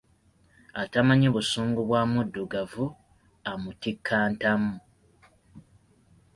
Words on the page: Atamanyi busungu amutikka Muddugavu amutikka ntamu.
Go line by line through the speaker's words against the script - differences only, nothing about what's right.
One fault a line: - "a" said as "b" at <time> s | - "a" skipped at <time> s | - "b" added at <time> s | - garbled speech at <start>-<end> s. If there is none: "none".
- "amutikka" said as "bwa" at 1.9 s